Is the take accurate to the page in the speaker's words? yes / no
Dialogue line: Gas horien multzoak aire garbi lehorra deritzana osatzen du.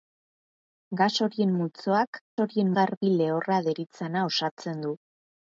no